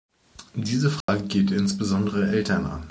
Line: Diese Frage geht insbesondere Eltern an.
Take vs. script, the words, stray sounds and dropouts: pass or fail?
fail